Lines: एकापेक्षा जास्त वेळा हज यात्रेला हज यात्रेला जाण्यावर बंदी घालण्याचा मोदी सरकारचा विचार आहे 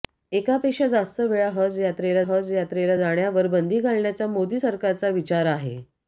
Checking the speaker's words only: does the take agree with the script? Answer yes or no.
yes